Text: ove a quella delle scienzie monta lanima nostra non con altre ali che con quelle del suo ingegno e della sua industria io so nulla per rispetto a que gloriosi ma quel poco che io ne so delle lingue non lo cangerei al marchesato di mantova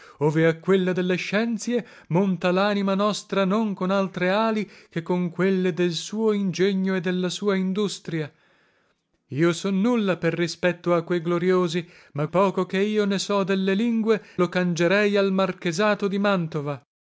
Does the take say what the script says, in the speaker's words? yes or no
no